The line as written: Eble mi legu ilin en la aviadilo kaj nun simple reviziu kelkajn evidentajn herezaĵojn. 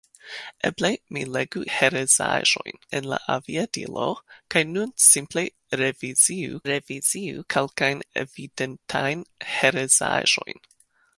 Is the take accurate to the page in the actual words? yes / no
no